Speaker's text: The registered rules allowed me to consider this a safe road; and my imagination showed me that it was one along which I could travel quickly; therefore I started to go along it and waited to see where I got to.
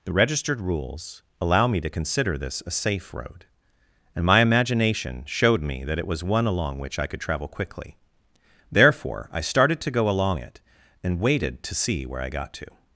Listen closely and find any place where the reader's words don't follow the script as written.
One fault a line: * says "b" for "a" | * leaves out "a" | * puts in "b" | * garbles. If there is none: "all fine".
* says "allow" for "allowed"